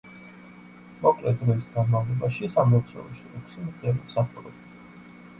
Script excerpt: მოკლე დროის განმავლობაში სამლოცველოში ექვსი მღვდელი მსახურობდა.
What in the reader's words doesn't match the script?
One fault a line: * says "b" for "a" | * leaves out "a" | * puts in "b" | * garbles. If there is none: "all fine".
all fine